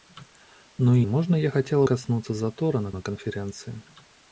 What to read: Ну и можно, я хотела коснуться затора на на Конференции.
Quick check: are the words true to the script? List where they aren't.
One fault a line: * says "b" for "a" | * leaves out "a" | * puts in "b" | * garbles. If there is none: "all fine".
all fine